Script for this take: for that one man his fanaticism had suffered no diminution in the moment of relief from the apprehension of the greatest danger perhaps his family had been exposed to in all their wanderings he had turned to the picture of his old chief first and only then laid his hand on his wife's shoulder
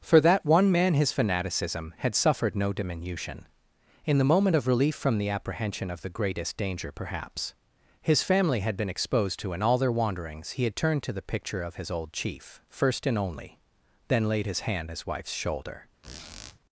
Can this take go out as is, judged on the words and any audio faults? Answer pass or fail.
fail